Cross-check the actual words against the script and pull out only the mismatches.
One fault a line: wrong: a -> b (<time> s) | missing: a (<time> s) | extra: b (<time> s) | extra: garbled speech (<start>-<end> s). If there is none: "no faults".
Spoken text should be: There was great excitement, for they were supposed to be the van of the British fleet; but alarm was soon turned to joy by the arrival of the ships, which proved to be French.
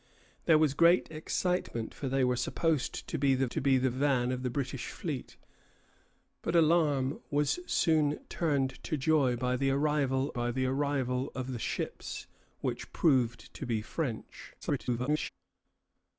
extra: to be the (3.5 s)
extra: by the arrival (10.3 s)
extra: garbled speech (14.6-15.3 s)